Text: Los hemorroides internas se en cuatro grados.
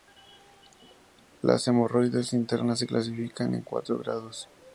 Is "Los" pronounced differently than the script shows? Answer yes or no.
yes